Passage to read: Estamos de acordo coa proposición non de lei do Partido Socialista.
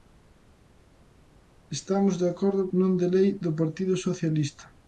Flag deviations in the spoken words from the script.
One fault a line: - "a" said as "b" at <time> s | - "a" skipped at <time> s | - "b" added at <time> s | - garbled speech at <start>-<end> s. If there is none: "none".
- "coa proposición" skipped at 2.6 s